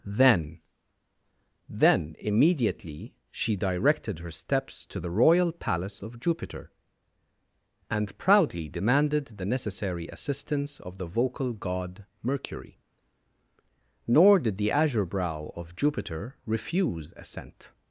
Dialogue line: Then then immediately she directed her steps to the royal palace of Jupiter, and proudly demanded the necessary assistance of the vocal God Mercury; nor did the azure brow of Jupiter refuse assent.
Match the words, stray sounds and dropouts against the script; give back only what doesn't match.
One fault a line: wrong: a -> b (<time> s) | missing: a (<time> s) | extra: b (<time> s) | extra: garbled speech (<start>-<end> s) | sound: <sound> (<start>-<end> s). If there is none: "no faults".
no faults